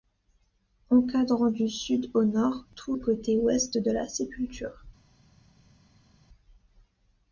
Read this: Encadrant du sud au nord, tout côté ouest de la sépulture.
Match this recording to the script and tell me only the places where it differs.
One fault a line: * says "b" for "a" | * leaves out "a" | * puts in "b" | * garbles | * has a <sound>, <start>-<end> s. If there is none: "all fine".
all fine